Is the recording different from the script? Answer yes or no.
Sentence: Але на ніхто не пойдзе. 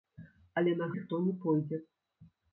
no